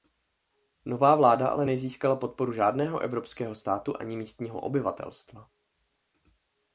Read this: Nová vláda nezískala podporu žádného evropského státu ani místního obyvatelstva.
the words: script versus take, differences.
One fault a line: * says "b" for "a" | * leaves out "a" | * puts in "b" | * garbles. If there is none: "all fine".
* puts in "ale"